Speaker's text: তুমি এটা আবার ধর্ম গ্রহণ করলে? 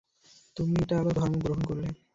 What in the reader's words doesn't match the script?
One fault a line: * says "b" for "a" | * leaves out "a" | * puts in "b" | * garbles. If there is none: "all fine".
all fine